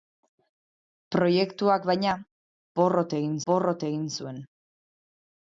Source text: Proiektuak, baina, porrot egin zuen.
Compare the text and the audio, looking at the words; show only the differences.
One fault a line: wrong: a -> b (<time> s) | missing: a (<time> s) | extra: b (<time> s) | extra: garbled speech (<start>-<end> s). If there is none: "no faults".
extra: porrot egin (3.5 s)